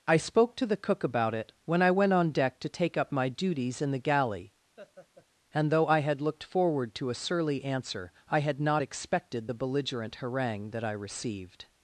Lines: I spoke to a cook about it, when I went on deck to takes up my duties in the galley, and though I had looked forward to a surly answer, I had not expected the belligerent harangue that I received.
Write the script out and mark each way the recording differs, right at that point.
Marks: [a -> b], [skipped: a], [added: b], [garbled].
I spoke to [a -> the] cook about it, when I went on deck to [takes -> take] up my duties in the galley, and though I had looked forward to a surly answer, I had not expected the belligerent harangue that I received.